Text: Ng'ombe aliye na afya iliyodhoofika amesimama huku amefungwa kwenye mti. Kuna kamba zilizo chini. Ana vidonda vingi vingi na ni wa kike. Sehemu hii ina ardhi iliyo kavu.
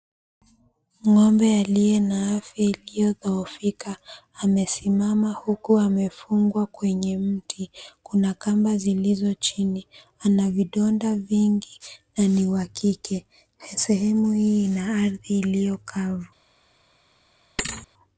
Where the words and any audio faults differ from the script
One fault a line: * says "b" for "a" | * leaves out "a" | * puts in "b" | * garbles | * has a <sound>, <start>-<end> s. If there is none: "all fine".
* leaves out "vingi"
* has a thud, 17.6-17.9 s